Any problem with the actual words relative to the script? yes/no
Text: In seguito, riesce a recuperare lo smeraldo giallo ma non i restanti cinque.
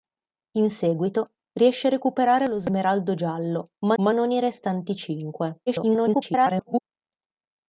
yes